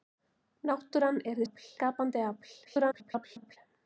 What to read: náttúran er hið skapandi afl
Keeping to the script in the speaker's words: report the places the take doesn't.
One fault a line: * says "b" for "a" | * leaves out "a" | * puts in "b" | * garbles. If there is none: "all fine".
* says "afl" for "hið"
* garbles